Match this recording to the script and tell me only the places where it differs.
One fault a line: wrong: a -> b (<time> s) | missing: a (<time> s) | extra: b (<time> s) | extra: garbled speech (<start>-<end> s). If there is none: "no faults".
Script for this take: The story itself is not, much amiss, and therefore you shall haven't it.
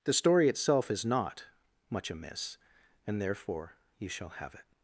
wrong: haven't -> have (4.3 s)